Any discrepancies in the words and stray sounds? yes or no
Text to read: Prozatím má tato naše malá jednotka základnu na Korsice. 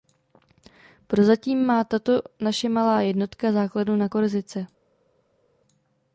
no